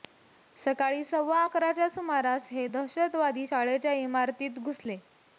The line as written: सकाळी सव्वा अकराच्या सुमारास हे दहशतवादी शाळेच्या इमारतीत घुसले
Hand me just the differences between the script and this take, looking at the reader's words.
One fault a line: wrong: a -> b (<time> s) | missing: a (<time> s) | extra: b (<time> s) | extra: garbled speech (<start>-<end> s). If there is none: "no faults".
no faults